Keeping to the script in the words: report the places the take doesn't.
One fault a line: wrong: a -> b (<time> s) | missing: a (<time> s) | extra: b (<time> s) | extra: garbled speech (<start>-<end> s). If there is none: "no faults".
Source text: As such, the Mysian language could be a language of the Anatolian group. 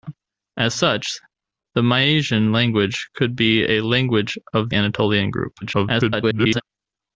missing: the (4.7 s)
extra: garbled speech (5.6-6.6 s)